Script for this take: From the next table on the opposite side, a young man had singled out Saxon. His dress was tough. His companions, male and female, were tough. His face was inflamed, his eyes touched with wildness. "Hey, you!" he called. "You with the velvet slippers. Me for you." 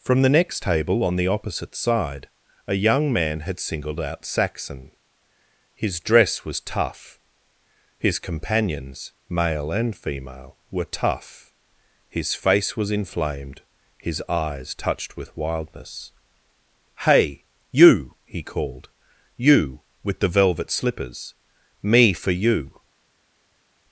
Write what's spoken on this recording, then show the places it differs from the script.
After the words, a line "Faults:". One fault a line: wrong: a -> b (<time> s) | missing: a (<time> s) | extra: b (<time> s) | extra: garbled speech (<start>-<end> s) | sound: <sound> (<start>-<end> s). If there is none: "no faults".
From the next table on the opposite side, a young man had singled out Saxon. His dress was tough. His companions, male and female, were tough. His face was inflamed, his eyes touched with wildness. "Hey, you!" he called. "You with the velvet slippers. Me for you."
Faults:
no faults